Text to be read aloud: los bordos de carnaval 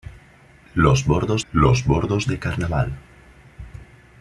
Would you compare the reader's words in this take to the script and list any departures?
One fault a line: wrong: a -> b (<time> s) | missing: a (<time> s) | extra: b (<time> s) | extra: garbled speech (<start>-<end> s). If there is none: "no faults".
extra: los bordos (1.5 s)